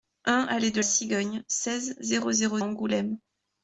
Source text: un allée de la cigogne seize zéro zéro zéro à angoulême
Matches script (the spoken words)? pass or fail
fail